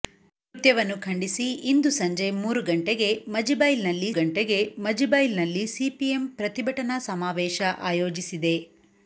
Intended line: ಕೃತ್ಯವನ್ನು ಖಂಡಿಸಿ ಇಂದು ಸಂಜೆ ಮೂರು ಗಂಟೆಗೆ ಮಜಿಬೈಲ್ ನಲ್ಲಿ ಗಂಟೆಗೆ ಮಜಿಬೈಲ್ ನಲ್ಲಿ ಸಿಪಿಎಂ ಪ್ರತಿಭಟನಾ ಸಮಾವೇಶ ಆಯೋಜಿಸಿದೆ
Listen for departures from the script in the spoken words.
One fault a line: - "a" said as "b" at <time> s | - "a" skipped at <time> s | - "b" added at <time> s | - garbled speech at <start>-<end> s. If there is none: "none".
none